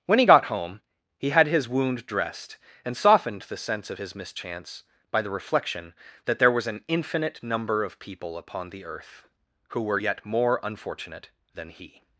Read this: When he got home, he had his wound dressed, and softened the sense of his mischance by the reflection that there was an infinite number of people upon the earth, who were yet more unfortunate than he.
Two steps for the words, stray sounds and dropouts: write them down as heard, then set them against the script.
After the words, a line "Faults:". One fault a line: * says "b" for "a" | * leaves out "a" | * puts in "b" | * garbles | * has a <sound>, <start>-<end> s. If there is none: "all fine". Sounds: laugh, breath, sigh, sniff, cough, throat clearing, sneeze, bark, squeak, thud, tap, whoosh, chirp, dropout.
When he got home, he had his wound dressed, and softened the sense of his mischance by the reflection that there was an infinite number of people upon the earth, who were yet more unfortunate than he.
Faults:
all fine